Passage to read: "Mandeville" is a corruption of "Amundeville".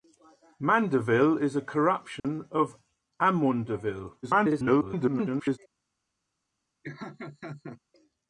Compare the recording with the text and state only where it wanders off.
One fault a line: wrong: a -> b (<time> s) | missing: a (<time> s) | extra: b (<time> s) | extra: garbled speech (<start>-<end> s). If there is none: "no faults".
extra: garbled speech (4.2-5.6 s)